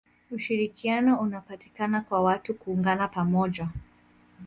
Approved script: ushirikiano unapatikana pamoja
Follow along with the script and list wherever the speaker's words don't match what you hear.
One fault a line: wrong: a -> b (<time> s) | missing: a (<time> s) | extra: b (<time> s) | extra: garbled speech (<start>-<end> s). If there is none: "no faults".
extra: kwa watu kuungana (2.0 s)